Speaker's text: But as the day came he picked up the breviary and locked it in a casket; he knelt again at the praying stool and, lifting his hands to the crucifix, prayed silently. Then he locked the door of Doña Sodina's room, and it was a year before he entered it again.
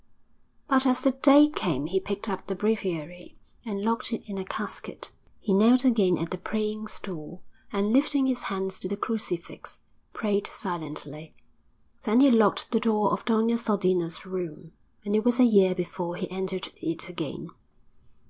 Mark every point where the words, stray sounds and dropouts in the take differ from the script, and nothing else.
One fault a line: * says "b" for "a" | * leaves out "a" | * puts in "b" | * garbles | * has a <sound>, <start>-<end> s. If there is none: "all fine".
all fine